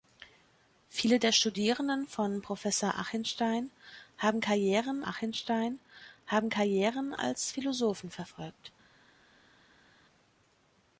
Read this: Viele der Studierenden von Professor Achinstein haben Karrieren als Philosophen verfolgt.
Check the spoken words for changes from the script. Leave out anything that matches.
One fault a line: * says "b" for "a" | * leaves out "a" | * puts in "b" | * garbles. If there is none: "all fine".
* puts in "Achinstein haben Karrieren"